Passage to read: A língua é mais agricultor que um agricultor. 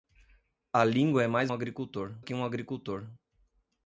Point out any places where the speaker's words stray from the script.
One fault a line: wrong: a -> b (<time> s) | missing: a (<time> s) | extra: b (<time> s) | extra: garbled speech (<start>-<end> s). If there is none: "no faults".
no faults